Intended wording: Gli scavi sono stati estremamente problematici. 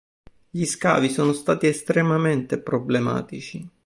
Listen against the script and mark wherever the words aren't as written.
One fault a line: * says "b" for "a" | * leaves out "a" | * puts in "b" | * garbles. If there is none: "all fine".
all fine